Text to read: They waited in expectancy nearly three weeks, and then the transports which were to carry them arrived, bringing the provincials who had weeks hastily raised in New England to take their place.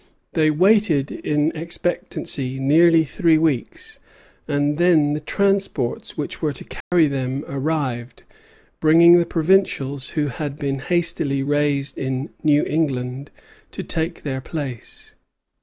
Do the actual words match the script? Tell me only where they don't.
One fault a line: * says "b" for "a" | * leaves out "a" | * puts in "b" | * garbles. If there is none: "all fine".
* says "been" for "weeks"